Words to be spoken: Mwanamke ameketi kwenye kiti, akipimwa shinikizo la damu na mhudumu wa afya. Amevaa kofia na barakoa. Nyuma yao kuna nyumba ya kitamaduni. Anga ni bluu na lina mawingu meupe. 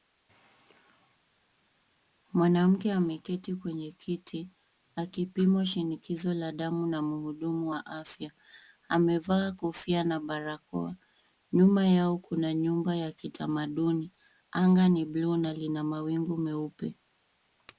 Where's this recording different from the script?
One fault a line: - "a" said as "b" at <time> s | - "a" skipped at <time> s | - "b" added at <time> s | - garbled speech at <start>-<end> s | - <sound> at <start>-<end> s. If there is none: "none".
none